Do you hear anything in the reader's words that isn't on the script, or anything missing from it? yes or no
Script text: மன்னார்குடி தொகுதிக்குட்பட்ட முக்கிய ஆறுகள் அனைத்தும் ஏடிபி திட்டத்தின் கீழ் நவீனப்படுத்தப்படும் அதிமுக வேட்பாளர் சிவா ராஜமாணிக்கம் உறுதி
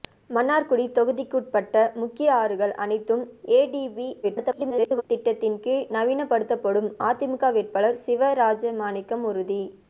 yes